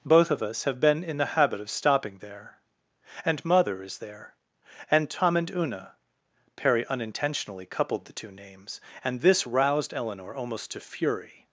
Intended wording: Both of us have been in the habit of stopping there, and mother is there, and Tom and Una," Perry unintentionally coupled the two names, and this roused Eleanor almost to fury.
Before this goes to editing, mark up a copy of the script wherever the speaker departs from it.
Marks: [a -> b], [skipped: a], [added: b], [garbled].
Both of us have been in the habit of stopping there, and mother is there, and Tom and Una," Perry unintentionally coupled the two names, and this roused Eleanor almost to fury.